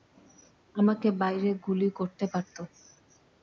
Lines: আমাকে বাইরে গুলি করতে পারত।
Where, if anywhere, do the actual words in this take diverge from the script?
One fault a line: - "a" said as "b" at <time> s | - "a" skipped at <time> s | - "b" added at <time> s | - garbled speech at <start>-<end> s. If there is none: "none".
none